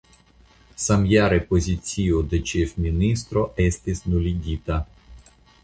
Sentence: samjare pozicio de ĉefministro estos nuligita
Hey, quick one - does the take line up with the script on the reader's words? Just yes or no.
no